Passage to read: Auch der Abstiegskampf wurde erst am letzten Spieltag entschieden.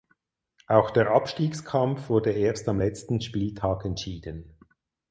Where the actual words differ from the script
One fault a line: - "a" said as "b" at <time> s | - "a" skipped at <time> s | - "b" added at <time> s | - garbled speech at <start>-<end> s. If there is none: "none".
none